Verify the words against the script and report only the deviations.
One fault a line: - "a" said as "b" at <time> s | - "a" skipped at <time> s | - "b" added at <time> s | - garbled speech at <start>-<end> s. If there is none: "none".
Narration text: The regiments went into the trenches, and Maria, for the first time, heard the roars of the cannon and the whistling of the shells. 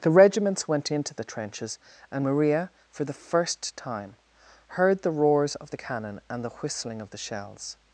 none